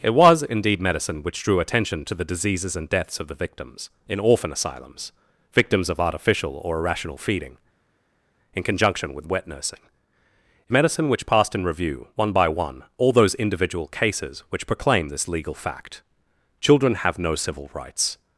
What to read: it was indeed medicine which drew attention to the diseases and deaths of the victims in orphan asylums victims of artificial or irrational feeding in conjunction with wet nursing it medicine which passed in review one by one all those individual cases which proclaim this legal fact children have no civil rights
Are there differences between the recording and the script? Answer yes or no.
no